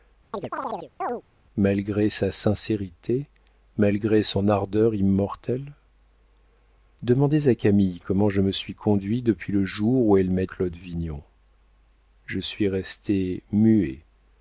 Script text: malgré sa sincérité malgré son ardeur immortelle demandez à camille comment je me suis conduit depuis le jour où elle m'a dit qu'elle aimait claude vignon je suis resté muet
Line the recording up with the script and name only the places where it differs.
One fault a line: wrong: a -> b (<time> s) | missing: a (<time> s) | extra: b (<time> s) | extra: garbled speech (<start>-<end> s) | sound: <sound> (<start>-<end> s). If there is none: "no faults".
sound: chirp (0.3-1.2 s)
missing: dit qu'elle aimait (10.5 s)